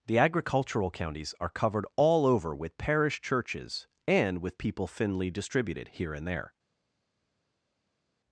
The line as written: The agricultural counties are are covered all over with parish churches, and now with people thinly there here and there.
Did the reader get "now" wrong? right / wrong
wrong